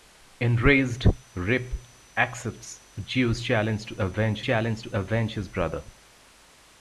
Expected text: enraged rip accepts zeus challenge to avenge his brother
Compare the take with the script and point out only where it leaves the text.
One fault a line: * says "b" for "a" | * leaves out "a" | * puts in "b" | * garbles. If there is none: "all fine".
* puts in "challenge to avenge"